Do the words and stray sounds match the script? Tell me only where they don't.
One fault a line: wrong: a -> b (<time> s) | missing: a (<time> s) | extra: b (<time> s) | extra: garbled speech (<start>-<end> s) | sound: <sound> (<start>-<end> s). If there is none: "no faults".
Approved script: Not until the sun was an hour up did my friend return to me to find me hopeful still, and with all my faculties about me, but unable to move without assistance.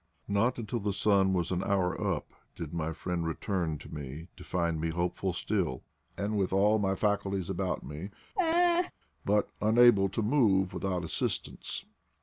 sound: laugh (8.4-8.9 s)